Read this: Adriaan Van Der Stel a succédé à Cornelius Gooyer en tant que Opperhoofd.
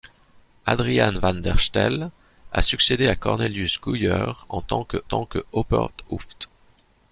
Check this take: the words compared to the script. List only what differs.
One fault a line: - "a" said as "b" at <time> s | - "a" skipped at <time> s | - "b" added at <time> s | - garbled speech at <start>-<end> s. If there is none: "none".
- "tant que" added at 5.0 s